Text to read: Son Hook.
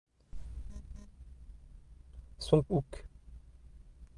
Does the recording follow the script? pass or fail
pass